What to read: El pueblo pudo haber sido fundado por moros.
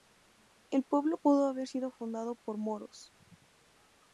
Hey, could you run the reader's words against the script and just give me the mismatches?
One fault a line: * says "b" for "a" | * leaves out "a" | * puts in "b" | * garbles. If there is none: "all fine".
all fine